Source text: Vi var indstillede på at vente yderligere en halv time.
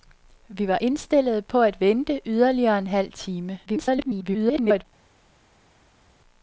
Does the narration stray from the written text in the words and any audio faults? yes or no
yes